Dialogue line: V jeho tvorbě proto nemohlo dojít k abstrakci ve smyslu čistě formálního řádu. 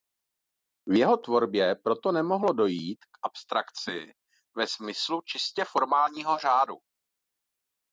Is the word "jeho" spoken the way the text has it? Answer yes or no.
yes